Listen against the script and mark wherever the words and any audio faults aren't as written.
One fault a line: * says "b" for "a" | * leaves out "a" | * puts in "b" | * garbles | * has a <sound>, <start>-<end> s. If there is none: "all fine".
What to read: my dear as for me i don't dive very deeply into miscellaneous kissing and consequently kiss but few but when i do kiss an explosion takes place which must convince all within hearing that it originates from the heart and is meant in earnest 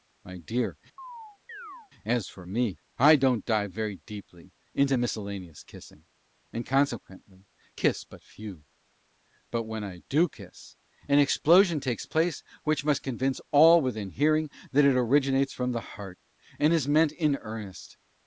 * has a chirp, 1.0-1.9 s